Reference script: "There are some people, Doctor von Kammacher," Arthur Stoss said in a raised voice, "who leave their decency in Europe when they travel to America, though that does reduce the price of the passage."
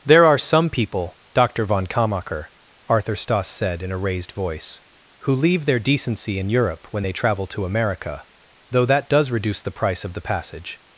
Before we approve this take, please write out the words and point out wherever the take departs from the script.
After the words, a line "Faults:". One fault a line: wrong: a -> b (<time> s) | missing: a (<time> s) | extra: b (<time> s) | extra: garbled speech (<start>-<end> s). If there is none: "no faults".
"There are some people, Doctor von Kammacher," Arthur Stoss said in a raised voice, "who leave their decency in Europe when they travel to America, though that does reduce the price of the passage."
Faults:
no faults